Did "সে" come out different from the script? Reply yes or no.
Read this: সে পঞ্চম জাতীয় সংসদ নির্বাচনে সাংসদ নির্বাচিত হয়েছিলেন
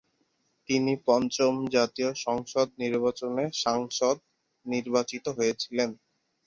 yes